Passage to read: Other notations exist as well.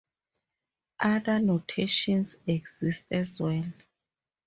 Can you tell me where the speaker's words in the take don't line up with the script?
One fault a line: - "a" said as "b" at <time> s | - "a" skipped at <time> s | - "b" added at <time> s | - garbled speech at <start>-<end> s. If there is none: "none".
none